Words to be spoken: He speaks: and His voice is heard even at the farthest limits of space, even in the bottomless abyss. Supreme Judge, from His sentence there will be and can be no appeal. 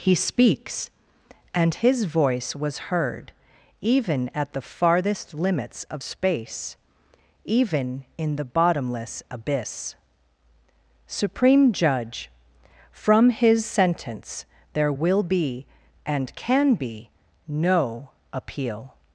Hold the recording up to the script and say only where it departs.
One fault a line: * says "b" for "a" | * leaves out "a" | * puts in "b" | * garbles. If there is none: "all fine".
* says "was" for "is"